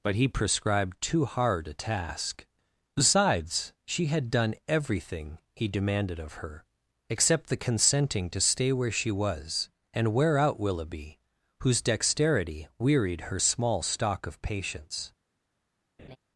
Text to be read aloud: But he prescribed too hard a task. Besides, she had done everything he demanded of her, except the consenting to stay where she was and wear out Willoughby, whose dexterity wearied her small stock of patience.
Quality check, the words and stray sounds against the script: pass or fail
fail